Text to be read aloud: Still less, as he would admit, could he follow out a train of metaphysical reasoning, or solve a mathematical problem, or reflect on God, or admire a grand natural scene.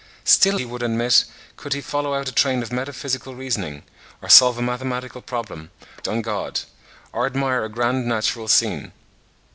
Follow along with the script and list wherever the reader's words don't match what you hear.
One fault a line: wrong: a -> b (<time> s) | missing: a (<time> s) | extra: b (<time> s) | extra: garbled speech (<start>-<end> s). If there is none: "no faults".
missing: less as (0.6 s)
missing: or reflect (5.7 s)